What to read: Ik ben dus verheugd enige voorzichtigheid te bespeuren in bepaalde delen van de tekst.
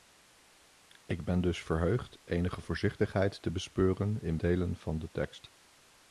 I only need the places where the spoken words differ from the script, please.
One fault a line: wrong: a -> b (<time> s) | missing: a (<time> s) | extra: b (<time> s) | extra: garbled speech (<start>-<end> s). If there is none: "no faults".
missing: bepaalde (4.4 s)